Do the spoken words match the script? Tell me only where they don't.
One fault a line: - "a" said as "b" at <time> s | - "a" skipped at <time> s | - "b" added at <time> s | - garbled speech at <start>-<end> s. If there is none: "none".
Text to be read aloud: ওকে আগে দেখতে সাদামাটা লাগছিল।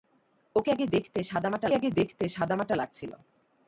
- "আগে দেখতে সাদামাটা" added at 1.7 s